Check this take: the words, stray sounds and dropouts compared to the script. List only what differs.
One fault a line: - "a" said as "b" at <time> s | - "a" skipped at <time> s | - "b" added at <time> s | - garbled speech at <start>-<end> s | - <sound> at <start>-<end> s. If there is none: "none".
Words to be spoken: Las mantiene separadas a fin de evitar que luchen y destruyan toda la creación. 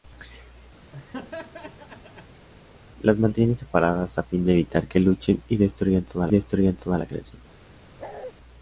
- laugh at 0.9-2.5 s
- "destruyan toda" added at 6.3 s
- bark at 8.0-8.3 s